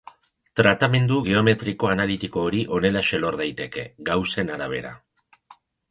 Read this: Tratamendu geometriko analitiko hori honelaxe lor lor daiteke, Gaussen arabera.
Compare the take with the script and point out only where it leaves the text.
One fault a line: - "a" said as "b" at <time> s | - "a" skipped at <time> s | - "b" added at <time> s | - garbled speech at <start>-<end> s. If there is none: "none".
- "lor" skipped at 3.4 s